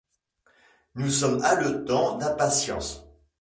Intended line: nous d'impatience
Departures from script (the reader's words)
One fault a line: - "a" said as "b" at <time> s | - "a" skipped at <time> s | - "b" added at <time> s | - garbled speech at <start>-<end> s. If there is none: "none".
- "sommes haletants" added at 1.1 s